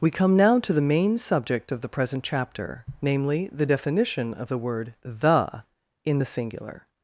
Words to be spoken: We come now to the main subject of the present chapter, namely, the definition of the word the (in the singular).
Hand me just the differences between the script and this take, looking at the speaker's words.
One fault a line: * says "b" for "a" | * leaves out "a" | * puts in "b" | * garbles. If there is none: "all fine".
all fine